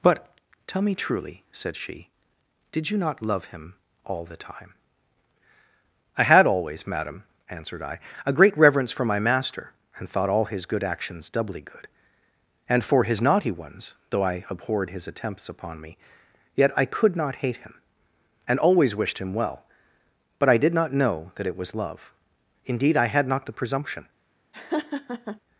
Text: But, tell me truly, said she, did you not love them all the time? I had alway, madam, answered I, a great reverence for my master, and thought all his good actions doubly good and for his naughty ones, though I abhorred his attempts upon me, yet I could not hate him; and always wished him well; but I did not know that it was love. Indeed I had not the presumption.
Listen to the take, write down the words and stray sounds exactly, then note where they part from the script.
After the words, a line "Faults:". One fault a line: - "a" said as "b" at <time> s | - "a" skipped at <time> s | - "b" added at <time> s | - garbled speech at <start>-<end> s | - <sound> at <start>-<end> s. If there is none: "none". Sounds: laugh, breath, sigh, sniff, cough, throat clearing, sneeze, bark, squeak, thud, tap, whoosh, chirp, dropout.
But, tell me truly, said she, did you not love him all the time? I had always, madam, answered I, a great reverence for my master, and thought all his good actions doubly good and for his naughty ones, though I abhorred his attempts upon me, yet I could not hate him; and always wished him well; but I did not know that it was love. Indeed I had not the presumption.
Faults:
- "them" said as "him" at 3.5 s
- "alway" said as "always" at 6.5 s
- laugh at 24.5-25.4 s